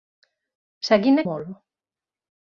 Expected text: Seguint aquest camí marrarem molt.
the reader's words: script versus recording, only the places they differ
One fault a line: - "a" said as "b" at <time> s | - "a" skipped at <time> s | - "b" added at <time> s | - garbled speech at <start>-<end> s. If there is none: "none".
- "aquest camí marrarem" skipped at 1.2 s